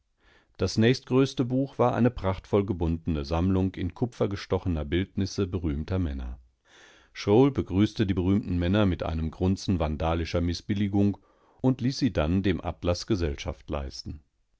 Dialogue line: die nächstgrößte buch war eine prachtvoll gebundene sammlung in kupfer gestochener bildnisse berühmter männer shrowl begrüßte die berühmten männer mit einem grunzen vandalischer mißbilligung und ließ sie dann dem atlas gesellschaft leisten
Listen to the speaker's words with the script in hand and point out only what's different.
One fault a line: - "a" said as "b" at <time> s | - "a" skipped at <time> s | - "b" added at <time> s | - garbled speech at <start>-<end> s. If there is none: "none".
- "die" said as "das" at 0.6 s